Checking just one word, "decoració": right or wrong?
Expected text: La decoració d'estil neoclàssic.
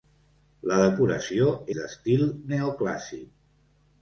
right